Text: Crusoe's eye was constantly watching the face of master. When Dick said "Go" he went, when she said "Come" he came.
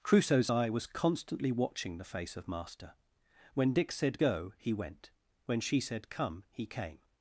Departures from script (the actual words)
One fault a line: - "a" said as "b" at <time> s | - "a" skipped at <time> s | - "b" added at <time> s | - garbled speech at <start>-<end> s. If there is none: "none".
none